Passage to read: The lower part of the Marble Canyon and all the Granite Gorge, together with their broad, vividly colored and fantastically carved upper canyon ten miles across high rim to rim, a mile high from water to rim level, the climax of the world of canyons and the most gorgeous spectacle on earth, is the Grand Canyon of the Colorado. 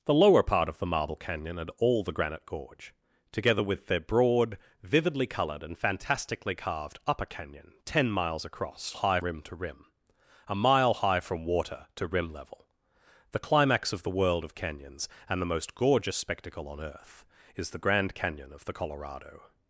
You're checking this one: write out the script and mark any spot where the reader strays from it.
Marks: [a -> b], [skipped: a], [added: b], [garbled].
The lower part of the Marble Canyon and all the Granite Gorge, together with their broad, vividly colored and fantastically carved upper canyon ten miles across high rim to rim, a mile high from water to rim level, the climax of the world of canyons and the most gorgeous spectacle on earth, is the Grand Canyon of the Colorado.